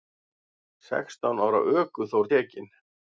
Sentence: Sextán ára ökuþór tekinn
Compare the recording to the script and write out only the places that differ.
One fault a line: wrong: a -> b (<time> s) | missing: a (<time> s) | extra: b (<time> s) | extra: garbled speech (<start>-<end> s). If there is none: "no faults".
no faults